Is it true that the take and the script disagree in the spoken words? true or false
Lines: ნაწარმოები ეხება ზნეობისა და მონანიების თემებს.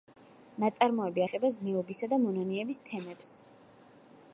false